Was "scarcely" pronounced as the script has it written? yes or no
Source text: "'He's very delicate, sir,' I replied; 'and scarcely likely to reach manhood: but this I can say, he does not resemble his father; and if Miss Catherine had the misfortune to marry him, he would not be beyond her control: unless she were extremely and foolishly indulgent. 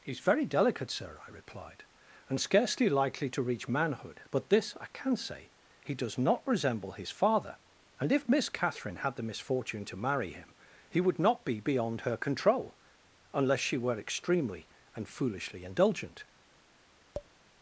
yes